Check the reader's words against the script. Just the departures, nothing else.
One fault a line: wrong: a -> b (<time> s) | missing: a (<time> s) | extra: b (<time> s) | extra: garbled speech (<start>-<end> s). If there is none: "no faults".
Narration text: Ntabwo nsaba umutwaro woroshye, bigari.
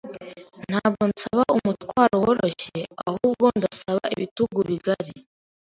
extra: ahubwo ndasaba ibitugu (3.1 s)